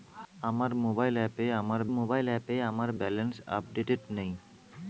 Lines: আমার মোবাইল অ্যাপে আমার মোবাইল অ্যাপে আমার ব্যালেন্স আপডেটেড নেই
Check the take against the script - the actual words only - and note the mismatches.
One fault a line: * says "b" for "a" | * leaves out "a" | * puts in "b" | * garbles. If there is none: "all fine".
all fine